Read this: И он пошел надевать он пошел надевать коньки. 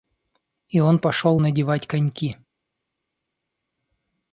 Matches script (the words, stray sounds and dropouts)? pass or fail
fail